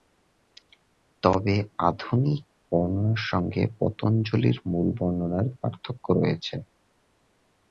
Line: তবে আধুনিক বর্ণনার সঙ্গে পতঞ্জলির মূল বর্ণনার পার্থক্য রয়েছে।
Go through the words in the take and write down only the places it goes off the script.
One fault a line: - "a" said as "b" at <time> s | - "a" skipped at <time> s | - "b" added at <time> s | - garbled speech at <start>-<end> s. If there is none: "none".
none